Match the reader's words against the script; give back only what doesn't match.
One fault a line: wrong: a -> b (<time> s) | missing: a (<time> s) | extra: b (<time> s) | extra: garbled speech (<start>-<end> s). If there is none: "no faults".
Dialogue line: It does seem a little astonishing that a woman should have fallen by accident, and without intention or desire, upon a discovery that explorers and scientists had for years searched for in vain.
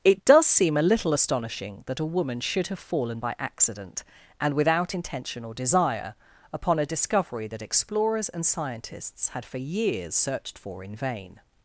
no faults